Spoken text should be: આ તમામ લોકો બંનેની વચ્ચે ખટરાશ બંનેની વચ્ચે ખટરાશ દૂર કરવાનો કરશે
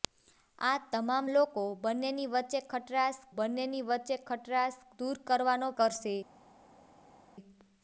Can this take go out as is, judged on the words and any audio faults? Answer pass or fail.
pass